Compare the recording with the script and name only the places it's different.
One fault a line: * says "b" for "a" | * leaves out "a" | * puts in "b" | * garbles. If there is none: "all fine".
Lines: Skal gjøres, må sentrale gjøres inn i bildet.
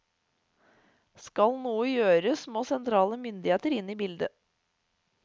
* puts in "noe"
* says "myndigheter" for "gjøres"